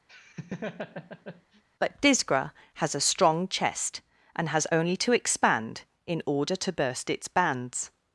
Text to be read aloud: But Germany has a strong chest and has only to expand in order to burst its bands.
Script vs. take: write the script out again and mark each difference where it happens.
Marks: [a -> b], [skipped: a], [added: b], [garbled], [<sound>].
[laugh] But [Germany -> Disgra] has a strong chest and has only to expand in order to burst its bands.